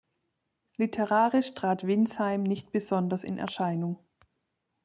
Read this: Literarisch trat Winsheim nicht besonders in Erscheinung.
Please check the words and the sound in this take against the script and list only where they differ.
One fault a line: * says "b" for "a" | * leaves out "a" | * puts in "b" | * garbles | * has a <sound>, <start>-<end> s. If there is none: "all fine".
all fine